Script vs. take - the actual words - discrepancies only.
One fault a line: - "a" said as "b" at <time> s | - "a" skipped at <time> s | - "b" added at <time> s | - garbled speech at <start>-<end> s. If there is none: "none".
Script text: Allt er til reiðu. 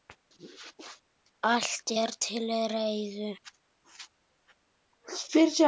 none